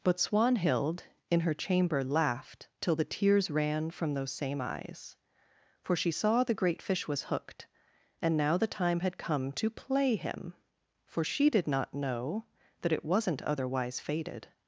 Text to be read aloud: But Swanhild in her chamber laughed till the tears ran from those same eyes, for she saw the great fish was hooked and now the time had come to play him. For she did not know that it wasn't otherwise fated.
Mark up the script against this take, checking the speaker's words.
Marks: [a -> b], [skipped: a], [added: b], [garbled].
But Swanhild in her chamber laughed till the tears ran from those same eyes, for she saw the great fish was hooked and now the time had come to play him. For she did not know that it wasn't otherwise fated.